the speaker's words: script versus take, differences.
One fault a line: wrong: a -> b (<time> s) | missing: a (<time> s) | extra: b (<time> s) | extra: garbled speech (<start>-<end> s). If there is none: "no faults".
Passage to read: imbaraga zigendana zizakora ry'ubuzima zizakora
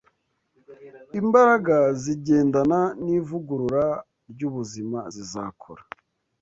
wrong: zizakora -> n'ivugurura (3.0 s)